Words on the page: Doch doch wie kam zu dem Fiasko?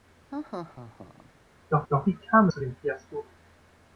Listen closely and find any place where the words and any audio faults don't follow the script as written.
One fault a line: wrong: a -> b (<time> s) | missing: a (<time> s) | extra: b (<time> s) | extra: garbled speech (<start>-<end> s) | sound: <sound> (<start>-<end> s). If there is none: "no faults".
sound: laugh (0.3-1.3 s)